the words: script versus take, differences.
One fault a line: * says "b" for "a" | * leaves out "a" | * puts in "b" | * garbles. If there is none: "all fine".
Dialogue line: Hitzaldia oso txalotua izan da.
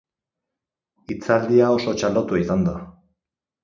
all fine